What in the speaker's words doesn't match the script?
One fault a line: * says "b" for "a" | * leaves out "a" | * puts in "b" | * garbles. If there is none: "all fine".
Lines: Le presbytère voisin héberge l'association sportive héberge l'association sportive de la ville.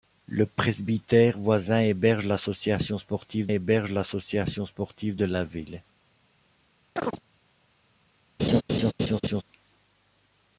all fine